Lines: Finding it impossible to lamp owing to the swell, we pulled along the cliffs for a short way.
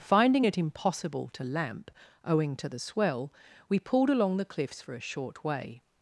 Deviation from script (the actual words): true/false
false